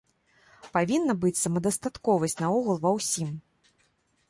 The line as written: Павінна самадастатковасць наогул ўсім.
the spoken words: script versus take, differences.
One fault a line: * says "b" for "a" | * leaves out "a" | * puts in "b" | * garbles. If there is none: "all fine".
* puts in "быць"
* puts in "ва"